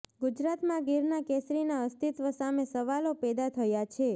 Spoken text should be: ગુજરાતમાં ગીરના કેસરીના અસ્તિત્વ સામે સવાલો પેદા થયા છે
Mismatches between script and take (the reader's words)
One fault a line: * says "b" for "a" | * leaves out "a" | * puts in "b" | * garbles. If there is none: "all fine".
all fine